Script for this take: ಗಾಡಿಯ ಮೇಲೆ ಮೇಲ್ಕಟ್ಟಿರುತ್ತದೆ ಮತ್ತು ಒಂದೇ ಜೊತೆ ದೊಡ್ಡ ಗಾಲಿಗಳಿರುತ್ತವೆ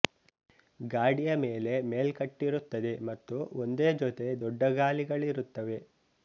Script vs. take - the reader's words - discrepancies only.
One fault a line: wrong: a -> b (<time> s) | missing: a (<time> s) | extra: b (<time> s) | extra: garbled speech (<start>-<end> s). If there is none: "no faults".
no faults